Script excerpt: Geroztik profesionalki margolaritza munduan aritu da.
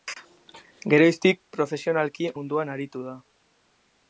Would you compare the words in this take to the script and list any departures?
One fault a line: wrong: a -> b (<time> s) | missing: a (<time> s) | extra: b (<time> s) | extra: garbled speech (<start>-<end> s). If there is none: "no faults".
missing: margolaritza (2.3 s)